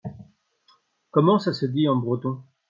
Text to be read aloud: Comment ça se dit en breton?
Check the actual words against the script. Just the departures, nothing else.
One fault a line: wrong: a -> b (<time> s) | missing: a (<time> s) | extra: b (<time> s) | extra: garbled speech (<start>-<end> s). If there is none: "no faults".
no faults